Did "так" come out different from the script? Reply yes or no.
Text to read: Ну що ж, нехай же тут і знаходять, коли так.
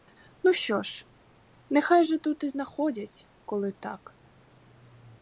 no